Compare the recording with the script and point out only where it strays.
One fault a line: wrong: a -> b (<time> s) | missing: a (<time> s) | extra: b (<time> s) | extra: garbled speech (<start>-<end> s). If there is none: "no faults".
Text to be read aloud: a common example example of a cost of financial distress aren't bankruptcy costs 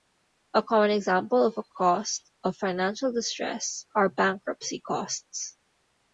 missing: example (1.4 s)
wrong: aren't -> are (3.9 s)